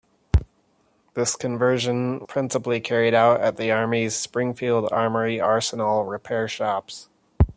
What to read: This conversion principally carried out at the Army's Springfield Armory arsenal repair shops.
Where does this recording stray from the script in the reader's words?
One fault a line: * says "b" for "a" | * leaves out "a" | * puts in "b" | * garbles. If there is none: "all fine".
all fine